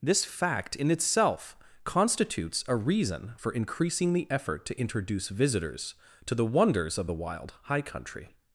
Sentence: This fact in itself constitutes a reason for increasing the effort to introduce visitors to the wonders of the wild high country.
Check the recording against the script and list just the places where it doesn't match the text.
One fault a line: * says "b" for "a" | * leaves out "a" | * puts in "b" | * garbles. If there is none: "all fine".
all fine